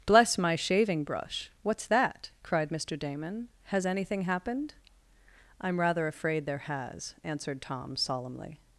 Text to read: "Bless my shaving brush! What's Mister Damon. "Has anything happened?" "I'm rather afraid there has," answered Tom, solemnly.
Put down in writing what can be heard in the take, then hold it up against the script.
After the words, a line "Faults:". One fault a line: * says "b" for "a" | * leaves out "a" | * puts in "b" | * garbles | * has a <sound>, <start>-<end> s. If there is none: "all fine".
"Bless my shaving brush! What's that?" cried Mister Damon. "Has anything happened?" "I'm rather afraid there has," answered Tom, solemnly.
Faults:
* puts in "that cried"